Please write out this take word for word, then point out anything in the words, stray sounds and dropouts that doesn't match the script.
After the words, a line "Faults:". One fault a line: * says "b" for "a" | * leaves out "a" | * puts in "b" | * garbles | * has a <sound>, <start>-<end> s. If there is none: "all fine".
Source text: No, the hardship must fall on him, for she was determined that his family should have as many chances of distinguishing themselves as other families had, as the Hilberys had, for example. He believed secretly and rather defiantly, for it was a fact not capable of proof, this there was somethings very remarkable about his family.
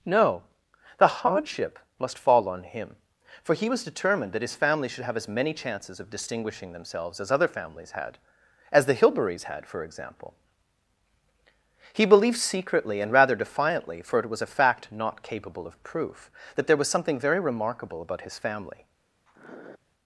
No, the hardship must fall on him, for he was determined that his family should have as many chances of distinguishing themselves as other families had, as the Hilberys had, for example. He believed secretly and rather defiantly, for it was a fact not capable of proof, that there was something very remarkable about his family.
Faults:
* says "he" for "she"
* says "that" for "this"
* says "something" for "somethings"
* has a sniff, 19.3-19.8 s